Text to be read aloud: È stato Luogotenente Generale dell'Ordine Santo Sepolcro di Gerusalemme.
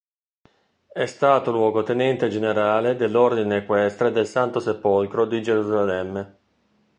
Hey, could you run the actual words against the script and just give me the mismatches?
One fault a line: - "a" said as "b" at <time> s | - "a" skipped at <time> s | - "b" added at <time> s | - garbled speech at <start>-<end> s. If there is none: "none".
- "Equestre del" added at 3.6 s